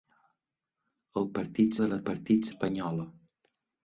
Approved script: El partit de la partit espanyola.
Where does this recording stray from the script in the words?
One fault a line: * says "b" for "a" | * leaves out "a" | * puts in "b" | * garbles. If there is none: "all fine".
all fine